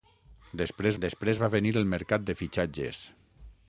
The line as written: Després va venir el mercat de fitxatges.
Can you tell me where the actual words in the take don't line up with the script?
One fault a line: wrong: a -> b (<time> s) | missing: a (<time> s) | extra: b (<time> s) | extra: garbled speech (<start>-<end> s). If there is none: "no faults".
extra: després (1.0 s)